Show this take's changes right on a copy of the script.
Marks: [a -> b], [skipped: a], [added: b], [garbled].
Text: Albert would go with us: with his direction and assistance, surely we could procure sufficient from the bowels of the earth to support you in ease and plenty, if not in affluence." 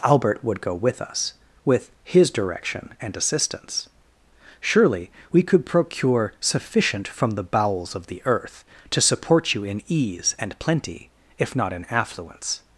Albert would go with us: with his direction and assistance, surely we could procure sufficient from the bowels of the earth to support you in ease and plenty, if not in affluence."